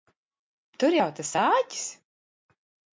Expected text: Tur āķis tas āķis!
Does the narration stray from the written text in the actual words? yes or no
yes